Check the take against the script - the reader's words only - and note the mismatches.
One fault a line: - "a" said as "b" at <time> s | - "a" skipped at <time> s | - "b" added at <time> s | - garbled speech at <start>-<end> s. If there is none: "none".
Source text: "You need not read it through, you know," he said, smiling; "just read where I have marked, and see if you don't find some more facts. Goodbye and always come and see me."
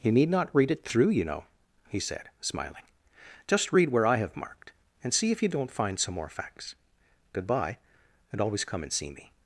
none